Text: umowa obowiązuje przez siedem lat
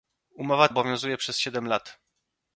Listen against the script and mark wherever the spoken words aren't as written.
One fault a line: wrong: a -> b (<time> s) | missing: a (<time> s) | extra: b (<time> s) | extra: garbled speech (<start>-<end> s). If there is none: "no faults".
no faults